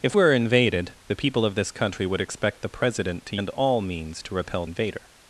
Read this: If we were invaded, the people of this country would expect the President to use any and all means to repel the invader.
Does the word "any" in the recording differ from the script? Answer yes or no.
yes